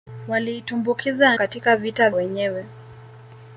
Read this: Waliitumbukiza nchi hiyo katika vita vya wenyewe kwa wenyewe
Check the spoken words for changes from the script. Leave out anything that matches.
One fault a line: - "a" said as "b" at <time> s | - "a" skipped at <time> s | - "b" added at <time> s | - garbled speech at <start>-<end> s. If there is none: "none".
- "nchi hiyo" skipped at 1.4 s
- "vya wenyewe kwa" skipped at 2.1 s